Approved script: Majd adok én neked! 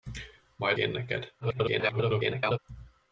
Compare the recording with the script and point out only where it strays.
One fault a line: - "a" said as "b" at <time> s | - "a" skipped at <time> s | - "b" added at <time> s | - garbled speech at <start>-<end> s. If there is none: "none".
- "adok" skipped at 0.8 s
- garbled speech at 1.4-2.6 s